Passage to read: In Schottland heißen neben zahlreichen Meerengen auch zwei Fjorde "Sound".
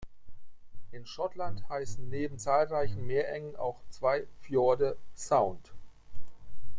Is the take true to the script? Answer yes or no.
yes